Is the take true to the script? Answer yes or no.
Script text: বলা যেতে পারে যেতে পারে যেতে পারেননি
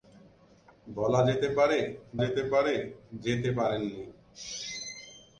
yes